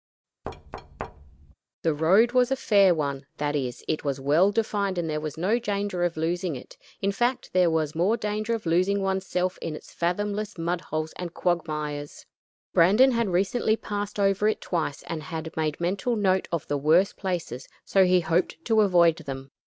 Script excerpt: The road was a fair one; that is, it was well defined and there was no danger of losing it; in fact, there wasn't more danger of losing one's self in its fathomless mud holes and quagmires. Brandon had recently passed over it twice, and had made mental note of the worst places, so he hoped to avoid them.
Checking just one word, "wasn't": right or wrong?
wrong